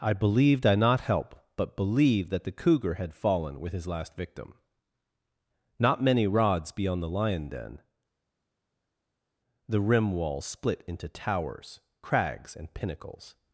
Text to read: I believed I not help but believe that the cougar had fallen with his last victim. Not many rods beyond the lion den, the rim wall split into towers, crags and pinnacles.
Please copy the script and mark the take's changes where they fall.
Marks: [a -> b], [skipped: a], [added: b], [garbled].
I believed I not help but believe that the cougar had fallen with his last victim. Not many rods beyond the lion den, the rim wall split into towers, crags and pinnacles.